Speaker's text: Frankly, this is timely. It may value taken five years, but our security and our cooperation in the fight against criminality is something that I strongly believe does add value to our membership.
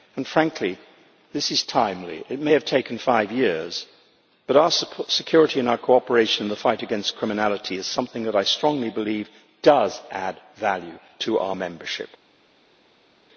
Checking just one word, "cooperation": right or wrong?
right